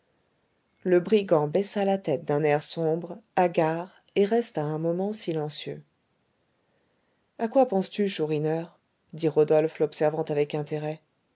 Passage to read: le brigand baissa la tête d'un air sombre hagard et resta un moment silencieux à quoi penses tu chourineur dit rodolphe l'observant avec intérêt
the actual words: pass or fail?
pass